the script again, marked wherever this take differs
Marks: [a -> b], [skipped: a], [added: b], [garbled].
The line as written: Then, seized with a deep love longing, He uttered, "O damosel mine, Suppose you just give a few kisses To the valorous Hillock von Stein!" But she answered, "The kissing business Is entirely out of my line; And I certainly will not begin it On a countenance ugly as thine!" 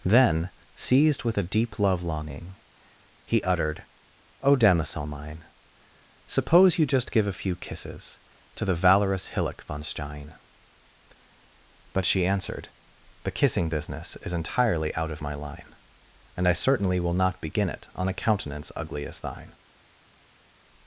Then, seized with a deep love longing, He uttered, "O damosel mine, Suppose you just give a few kisses To the valorous Hillock von Stein!" But she answered, "The kissing business Is entirely out of my line; And I certainly will not begin it On a countenance ugly as thine!"